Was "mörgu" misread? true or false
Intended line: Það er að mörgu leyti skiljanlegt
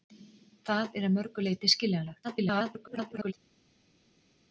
false